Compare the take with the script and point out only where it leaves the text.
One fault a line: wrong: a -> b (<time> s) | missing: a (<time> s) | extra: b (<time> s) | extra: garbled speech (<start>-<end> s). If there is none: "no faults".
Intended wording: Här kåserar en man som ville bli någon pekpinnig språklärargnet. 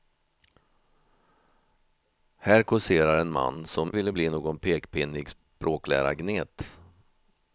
no faults